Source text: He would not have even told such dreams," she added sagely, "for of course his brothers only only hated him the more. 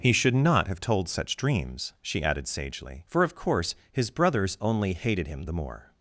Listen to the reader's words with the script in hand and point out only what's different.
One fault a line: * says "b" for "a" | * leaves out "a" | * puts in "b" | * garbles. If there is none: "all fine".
* says "should" for "would"
* leaves out "even"
* leaves out "only"